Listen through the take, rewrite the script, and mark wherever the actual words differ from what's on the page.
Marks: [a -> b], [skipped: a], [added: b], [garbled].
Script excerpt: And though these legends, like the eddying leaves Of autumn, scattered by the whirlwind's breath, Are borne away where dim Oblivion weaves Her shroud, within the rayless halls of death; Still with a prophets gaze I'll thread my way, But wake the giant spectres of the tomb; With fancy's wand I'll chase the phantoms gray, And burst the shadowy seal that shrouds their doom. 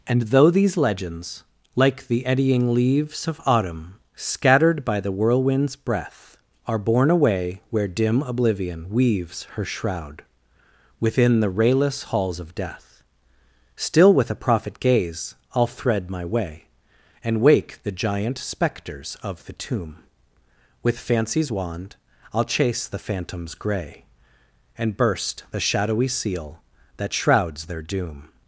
And though these legends, like the eddying leaves Of autumn, scattered by the whirlwind's breath, Are borne away where dim Oblivion weaves Her shroud, within the rayless halls of death; Still with a [prophets -> prophet] gaze I'll thread my way, [But -> And] wake the giant spectres of the tomb; With fancy's wand I'll chase the phantoms gray, And burst the shadowy seal that shrouds their doom.